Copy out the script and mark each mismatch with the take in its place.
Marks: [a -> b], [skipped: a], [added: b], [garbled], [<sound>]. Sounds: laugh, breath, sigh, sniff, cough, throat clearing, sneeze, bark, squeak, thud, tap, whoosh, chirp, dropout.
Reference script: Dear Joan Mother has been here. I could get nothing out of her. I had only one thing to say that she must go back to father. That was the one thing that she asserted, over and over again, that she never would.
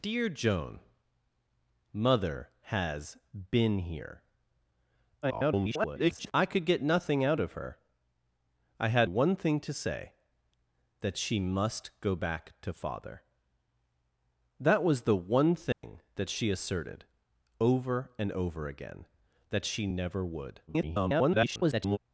Dear Joan Mother has been here. [garbled] I could get nothing out of her. I had [skipped: only] one thing to say that she must go back to father. That was the one thing [dropout] that she asserted, over and over again, that she never would. [garbled]